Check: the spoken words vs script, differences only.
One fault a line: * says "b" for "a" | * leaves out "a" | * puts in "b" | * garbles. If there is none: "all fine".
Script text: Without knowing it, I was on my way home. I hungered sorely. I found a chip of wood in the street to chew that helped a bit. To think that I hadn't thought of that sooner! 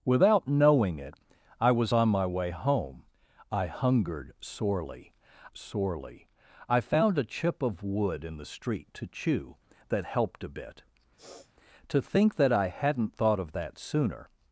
* puts in "sorely"